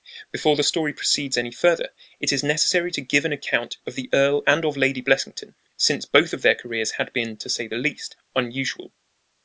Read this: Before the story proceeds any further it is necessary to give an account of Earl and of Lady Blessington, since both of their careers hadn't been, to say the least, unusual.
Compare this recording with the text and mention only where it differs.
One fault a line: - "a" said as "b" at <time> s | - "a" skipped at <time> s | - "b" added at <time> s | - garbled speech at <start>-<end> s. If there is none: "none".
- "the" added at 4.0 s
- "hadn't" said as "had" at 6.9 s